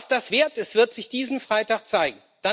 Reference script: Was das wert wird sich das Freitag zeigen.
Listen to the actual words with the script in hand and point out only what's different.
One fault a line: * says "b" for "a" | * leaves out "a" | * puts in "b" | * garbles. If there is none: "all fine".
* puts in "ist"
* says "diesen" for "das"